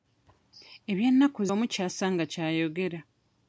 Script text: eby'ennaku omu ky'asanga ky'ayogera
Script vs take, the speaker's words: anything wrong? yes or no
no